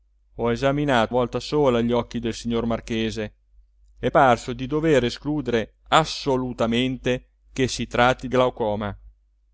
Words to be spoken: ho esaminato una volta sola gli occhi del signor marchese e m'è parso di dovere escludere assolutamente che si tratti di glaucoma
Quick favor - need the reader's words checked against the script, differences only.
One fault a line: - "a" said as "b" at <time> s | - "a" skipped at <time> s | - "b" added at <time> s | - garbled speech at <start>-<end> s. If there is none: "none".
- "una" skipped at 1.2 s
- "m'è" skipped at 4.1 s
- "di" skipped at 8.3 s